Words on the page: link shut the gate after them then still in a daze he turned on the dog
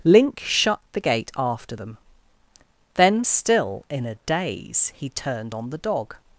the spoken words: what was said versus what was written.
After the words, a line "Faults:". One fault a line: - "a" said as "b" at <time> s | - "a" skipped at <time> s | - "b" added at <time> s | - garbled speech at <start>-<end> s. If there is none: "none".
link shut the gate after them then still in a daze he turned on the dog
Faults:
none